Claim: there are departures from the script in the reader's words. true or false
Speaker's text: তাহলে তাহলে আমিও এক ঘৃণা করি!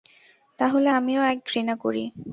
true